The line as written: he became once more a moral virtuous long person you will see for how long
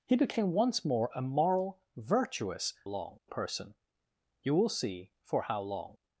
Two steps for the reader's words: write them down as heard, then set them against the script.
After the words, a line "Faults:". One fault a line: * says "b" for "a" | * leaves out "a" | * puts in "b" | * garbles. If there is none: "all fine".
he became once more a moral virtuous long person you will see for how long
Faults:
all fine